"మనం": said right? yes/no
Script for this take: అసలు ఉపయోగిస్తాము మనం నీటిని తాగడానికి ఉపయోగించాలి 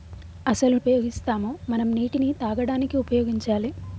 yes